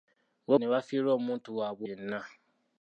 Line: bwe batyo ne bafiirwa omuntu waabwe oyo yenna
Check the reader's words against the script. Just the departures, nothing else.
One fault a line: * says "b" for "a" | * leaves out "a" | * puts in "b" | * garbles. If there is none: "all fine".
* leaves out "batyo"
* leaves out "oyo"